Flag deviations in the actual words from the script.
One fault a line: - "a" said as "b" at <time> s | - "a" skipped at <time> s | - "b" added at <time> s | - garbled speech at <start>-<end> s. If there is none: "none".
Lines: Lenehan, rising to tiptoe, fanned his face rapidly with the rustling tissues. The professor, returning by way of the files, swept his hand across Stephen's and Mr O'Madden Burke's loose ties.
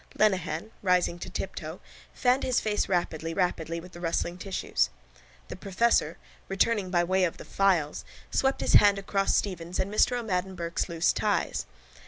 - "rapidly" added at 3.4 s